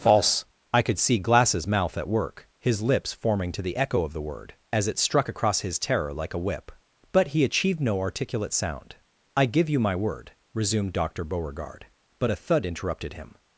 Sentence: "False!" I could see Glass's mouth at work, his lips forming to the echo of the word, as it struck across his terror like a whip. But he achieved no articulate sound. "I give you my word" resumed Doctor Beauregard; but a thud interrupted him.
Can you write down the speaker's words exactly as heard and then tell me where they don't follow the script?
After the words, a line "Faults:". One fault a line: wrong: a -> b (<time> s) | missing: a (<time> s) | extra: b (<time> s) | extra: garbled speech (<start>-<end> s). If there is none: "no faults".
"False!" I could see Glass's mouth at work, his lips forming to the echo of the word, as it struck across his terror like a whip. But he achieved no articulate sound. "I give you my word" resumed Doctor Beauregard; but a thud interrupted him.
Faults:
no faults